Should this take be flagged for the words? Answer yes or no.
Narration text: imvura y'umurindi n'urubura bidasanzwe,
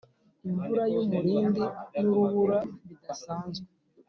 no